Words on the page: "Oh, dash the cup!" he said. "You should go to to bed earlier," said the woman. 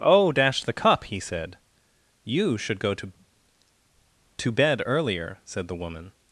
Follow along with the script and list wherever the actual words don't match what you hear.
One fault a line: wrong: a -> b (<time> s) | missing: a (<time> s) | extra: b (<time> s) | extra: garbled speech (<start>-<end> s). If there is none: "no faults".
no faults